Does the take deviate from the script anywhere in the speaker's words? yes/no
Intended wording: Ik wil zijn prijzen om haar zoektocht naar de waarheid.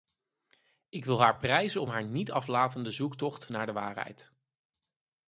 yes